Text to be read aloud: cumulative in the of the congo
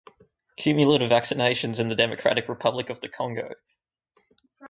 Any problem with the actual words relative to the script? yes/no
yes